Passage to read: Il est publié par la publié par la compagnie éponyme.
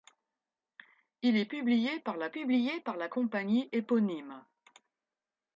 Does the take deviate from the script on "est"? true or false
false